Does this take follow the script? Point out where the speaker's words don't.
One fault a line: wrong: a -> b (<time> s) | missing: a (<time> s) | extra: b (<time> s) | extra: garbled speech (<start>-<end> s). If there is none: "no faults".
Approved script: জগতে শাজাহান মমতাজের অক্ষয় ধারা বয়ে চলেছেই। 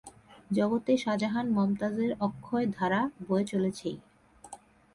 no faults